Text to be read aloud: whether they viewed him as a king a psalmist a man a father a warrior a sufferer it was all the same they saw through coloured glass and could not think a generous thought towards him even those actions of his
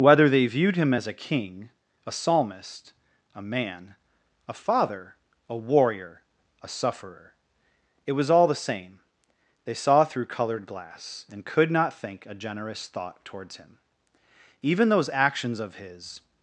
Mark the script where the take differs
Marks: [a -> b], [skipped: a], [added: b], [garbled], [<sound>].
whether they viewed him as a king a psalmist a man a father a warrior a sufferer it was all the same they saw through coloured glass and could not think a generous thought towards him even those actions of his